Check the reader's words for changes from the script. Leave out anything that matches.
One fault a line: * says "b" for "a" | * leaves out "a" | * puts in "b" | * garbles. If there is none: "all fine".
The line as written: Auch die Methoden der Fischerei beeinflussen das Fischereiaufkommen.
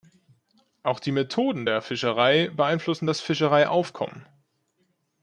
all fine